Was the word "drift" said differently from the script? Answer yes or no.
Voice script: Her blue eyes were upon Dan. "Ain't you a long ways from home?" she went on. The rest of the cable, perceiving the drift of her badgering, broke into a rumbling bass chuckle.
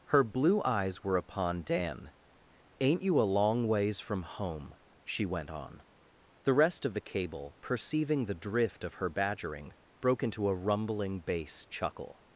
no